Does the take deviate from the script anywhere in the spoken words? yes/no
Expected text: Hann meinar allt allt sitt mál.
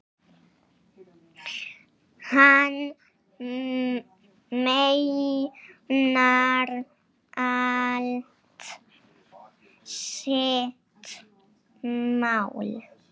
yes